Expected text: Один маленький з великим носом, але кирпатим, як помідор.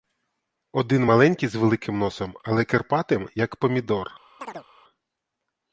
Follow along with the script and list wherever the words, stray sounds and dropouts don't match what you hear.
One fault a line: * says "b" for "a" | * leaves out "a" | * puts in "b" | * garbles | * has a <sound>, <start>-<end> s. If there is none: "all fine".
* has a chirp, 4.4-4.7 s